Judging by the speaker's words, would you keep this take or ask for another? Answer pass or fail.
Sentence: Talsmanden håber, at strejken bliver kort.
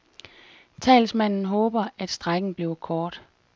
pass